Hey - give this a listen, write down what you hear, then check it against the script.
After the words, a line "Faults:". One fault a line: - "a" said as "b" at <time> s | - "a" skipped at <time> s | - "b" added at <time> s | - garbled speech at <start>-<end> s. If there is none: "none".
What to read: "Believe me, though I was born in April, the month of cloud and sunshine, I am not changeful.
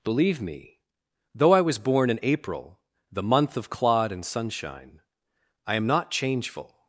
"Believe me, though I was born in April, the month of clod and sunshine, I am not changeful.
Faults:
- "cloud" said as "clod" at 3.7 s